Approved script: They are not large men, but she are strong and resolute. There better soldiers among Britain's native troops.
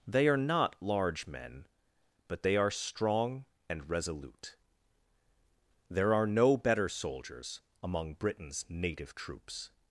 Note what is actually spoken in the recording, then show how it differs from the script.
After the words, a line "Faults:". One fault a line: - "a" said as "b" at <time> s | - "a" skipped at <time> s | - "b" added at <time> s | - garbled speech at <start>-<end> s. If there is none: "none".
They are not large men, but they are strong and resolute. There are no better soldiers among Britain's native troops.
Faults:
- "she" said as "they" at 2.4 s
- "are no" added at 6.1 s